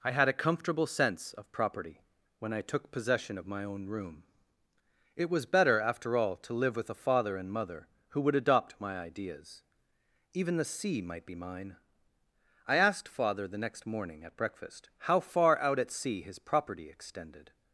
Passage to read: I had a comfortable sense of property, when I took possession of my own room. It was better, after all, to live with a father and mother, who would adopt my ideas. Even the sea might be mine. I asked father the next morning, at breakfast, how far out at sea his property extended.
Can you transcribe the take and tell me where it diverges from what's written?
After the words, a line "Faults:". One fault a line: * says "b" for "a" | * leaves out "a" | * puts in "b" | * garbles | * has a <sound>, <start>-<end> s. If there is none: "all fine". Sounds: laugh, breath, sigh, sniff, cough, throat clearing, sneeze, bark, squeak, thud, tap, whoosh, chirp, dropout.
I had a comfortable sense of property, when I took possession of my own room. It was better, after all, to live with a father and mother, who would adopt my ideas. Even the sea might be mine. I asked father the next morning, at breakfast, how far out at sea his property extended.
Faults:
all fine